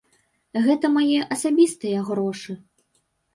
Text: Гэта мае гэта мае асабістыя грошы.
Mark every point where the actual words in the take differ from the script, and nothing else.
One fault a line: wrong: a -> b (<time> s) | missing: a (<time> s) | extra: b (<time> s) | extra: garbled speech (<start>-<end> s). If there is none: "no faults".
missing: гэта мае (1.2 s)